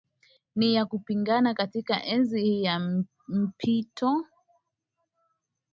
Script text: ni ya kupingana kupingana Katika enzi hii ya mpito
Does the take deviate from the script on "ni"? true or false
false